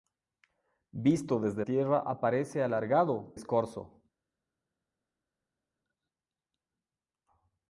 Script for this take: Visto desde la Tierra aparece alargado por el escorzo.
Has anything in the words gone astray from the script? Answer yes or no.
yes